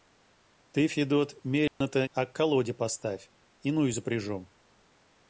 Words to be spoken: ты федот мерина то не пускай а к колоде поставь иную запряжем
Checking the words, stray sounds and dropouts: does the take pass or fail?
fail